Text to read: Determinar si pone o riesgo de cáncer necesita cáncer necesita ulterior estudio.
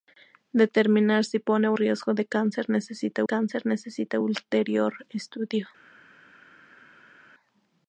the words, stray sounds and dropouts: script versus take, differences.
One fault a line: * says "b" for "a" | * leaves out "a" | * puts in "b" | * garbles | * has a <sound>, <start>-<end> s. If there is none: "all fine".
all fine